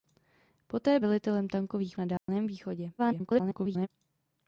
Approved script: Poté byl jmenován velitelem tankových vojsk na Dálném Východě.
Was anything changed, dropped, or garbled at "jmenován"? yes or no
yes